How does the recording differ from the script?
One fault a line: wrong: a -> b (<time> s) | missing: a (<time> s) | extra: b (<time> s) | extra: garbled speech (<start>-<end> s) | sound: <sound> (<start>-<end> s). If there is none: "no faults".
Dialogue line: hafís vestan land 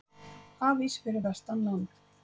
extra: fyrir (1.1 s)